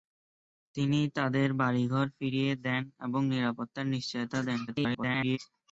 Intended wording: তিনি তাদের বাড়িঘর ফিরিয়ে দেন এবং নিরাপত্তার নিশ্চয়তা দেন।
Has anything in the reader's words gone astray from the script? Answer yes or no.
yes